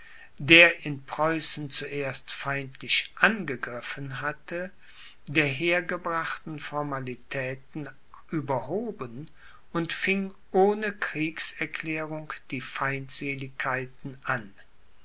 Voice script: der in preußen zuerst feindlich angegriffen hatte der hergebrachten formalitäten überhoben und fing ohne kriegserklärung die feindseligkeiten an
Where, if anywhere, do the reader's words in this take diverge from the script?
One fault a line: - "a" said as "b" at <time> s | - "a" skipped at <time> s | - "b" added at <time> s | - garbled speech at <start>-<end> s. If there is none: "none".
none